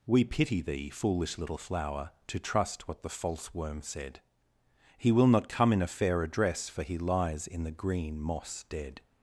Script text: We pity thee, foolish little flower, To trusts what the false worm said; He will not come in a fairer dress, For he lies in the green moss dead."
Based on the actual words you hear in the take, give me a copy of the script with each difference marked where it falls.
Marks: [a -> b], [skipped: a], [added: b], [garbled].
We pity thee, foolish little flower, To [trusts -> trust] what the false worm said; He will not come in a fairer dress, For he lies in the green moss dead."